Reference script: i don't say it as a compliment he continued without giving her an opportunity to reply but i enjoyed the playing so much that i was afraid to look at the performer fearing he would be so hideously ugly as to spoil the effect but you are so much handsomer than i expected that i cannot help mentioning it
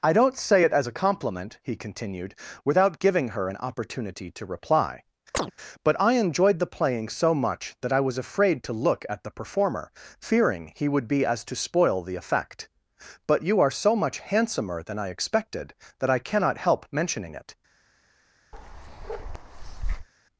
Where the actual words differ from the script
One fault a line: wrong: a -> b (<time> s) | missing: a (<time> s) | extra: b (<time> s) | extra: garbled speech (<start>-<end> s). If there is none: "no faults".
missing: so hideously ugly (11.2 s)